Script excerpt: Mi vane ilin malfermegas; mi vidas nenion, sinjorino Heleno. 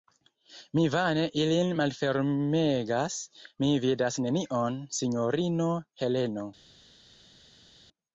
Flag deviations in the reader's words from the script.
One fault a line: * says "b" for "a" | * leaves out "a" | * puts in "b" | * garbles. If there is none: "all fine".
all fine